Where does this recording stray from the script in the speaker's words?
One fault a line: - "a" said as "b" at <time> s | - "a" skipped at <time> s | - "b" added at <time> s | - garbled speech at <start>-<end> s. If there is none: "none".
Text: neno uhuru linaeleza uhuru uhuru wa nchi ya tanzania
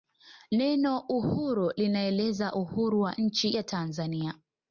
- "uhuru" skipped at 3.0 s